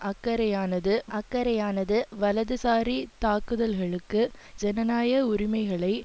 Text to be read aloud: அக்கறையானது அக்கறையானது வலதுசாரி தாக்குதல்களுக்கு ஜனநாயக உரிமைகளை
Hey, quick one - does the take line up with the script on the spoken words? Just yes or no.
yes